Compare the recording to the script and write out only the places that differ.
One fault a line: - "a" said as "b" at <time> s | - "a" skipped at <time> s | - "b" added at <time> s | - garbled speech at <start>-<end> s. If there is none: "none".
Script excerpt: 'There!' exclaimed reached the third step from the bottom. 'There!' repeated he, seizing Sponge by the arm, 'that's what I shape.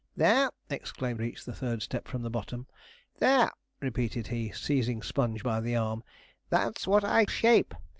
none